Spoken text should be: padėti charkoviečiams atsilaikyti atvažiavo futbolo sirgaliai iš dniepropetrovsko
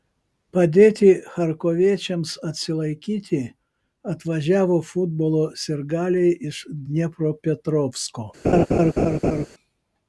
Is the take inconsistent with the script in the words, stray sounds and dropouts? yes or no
yes